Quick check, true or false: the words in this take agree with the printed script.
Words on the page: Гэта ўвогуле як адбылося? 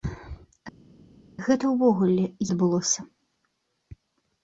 false